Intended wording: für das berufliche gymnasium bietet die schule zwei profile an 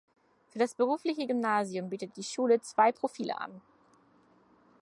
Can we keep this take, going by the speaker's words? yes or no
yes